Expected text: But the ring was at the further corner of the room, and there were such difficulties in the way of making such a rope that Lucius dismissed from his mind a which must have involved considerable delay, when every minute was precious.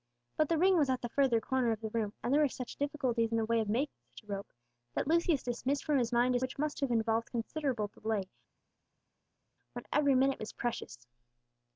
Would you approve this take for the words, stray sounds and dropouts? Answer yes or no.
yes